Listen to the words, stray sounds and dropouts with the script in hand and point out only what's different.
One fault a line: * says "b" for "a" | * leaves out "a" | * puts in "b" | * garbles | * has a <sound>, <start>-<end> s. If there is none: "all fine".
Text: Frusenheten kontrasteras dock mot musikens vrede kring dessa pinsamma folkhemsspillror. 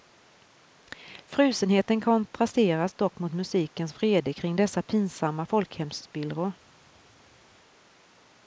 all fine